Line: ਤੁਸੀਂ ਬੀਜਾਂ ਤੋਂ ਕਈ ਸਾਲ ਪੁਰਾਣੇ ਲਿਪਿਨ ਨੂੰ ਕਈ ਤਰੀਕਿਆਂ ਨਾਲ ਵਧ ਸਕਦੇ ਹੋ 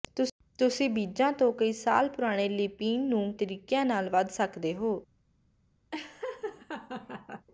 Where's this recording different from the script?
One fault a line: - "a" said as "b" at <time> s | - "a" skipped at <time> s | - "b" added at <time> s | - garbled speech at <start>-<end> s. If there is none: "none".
- "ਕਈ" skipped at 3.3 s